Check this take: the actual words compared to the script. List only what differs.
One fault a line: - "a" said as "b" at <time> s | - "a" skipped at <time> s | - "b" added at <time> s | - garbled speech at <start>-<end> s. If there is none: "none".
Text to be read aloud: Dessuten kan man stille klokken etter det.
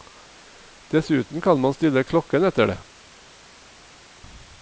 none